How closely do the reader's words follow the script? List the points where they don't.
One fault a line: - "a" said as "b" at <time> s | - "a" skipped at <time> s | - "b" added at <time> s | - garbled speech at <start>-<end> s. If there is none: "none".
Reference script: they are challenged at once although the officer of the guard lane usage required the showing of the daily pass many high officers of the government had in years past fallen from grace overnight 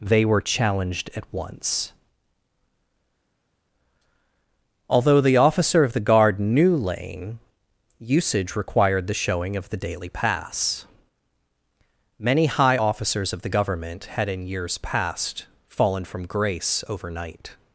- "are" said as "were" at 0.2 s
- "knew" added at 6.4 s